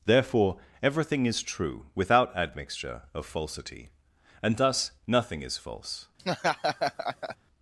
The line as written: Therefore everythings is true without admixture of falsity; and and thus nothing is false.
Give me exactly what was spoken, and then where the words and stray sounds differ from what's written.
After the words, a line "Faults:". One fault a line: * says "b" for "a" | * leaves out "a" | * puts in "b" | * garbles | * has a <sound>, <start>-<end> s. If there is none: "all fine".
Therefore everything is true without admixture of falsity; and thus nothing is false.
Faults:
* says "everything" for "everythings"
* leaves out "and"
* has a laugh, 6.2-7.4 s